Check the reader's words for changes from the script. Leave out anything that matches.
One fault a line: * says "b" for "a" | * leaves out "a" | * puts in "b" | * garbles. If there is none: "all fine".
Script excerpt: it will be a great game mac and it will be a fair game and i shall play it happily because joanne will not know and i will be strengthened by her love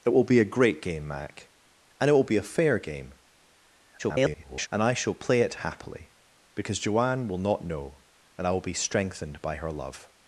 * garbles